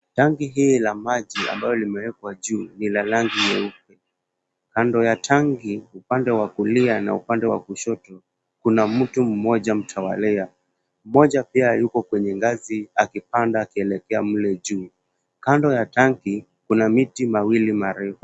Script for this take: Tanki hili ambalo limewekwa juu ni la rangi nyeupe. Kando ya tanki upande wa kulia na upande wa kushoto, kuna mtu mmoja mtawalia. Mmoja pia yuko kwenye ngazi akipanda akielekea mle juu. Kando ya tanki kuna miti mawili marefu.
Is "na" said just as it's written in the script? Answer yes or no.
yes